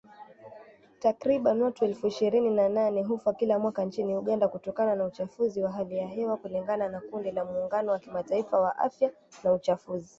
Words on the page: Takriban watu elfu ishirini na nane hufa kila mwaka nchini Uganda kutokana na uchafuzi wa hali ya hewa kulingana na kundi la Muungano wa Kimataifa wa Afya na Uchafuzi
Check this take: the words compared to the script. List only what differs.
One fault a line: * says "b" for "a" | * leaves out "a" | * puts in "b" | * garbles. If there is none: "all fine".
all fine